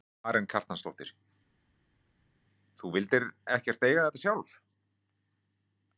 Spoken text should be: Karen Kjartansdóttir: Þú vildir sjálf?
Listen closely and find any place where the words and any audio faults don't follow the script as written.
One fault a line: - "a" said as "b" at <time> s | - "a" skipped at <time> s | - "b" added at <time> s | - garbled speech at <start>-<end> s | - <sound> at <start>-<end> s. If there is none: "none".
- "ekkert eiga þetta" added at 3.6 s